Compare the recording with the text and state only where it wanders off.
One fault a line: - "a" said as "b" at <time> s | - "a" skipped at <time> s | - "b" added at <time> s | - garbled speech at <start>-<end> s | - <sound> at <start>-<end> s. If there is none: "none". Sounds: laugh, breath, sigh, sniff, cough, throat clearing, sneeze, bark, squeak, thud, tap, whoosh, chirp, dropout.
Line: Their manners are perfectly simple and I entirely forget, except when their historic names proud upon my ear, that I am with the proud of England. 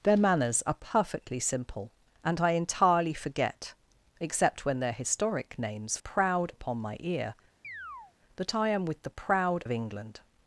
- chirp at 7.6-8.1 s